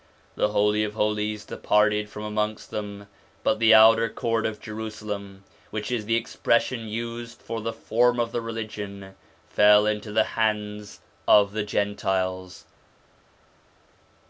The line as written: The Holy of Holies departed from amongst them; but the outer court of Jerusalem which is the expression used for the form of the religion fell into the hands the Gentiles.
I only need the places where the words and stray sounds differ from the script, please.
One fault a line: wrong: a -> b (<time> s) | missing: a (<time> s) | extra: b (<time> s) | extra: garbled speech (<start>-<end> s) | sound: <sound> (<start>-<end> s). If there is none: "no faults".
extra: of (11.3 s)